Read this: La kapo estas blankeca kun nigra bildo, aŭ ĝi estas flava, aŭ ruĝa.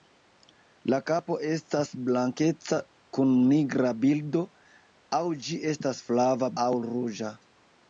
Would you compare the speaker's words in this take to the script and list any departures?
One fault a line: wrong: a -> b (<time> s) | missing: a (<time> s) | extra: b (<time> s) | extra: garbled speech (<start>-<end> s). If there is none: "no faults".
no faults